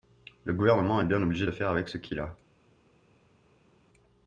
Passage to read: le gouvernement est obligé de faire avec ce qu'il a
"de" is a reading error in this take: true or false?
false